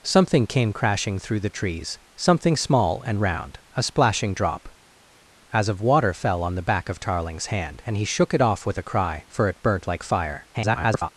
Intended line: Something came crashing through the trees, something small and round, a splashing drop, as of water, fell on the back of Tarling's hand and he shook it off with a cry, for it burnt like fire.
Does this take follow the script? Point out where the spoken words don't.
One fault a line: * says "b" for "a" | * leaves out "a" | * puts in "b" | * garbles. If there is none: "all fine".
* garbles